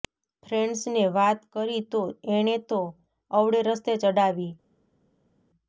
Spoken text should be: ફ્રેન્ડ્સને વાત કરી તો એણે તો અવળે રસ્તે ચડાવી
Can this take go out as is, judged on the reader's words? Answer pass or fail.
pass